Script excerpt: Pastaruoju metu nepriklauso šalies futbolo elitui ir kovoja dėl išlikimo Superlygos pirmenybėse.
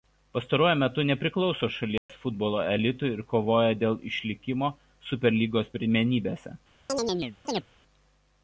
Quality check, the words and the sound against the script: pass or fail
fail